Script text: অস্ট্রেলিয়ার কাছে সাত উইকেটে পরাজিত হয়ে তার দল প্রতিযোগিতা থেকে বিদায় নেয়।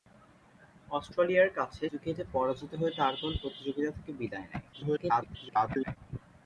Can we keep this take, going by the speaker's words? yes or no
no